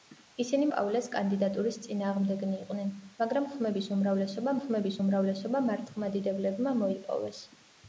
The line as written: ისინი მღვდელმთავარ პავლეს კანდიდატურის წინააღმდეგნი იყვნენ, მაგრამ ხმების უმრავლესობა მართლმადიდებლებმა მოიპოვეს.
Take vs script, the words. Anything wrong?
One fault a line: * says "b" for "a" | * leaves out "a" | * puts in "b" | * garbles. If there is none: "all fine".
* leaves out "მღვდელმთავარ"
* puts in "ხმების უმრავლესობა"